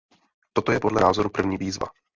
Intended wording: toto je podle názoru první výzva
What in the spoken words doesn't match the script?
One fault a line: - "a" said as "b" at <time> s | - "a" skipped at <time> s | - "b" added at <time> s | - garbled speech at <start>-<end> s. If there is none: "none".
none